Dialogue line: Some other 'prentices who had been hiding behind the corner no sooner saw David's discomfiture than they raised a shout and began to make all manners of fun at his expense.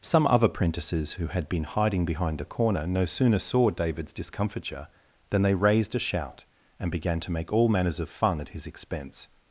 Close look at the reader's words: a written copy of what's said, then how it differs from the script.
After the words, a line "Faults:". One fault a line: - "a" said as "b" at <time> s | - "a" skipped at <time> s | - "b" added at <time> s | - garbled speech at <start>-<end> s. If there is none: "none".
Some other 'prentices who had been hiding behind the corner no sooner saw David's discomfiture than they raised a shout and began to make all manners of fun at his expense.
Faults:
none